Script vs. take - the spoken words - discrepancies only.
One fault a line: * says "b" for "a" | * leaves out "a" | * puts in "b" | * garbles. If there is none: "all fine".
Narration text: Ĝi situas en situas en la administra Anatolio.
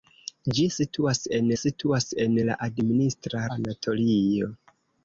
all fine